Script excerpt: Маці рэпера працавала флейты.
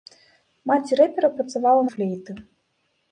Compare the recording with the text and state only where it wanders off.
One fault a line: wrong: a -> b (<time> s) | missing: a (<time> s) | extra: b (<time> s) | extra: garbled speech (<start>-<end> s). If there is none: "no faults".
no faults